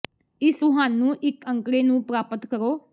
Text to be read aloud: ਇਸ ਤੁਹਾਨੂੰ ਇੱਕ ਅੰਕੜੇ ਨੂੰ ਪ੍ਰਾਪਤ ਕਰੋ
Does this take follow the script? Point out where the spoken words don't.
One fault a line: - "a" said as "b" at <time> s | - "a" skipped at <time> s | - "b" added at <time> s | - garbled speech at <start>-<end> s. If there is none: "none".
none